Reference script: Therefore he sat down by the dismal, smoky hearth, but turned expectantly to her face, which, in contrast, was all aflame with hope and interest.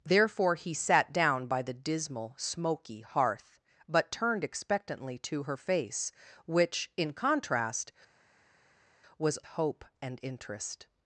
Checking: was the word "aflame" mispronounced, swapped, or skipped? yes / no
yes